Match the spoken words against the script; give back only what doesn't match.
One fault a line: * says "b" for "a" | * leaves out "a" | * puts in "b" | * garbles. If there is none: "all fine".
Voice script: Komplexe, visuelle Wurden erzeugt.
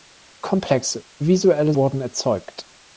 all fine